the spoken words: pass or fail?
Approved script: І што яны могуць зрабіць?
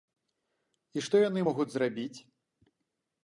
pass